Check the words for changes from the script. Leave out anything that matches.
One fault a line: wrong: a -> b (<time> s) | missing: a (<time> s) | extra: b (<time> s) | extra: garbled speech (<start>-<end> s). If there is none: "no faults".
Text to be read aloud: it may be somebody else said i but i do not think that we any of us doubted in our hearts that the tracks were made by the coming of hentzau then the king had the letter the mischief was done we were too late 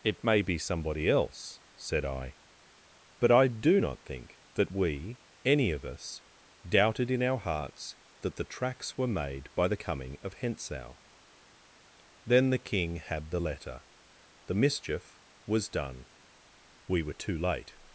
no faults